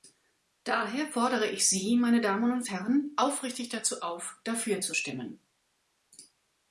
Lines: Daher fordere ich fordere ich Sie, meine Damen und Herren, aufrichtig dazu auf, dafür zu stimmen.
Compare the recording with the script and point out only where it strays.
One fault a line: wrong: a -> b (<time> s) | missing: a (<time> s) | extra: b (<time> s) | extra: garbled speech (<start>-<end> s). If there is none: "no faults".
missing: fordere ich (1.7 s)